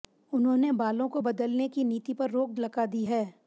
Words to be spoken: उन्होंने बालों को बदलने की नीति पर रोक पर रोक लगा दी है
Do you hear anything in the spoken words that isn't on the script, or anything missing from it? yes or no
yes